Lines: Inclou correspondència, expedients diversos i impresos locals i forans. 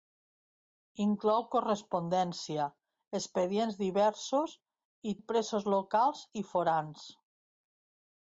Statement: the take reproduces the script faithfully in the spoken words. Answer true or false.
true